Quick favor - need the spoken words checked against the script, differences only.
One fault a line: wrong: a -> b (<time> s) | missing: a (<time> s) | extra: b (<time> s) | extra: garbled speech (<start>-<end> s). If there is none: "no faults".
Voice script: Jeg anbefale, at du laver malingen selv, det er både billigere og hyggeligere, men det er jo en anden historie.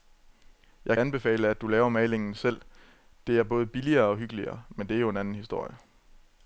no faults